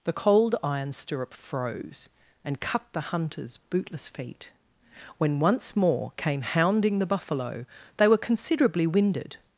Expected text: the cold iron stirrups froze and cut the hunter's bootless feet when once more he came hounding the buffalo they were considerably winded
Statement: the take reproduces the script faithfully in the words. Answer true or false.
false